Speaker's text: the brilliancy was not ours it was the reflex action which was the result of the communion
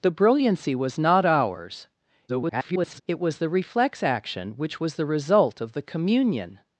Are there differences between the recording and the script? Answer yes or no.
yes